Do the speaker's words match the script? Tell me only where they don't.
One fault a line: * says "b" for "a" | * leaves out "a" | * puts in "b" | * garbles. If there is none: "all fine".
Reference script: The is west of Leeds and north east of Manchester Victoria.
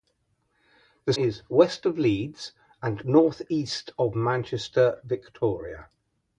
all fine